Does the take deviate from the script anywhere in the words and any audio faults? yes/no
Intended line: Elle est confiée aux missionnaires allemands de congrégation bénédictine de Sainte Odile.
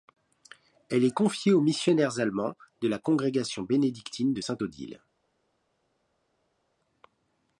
yes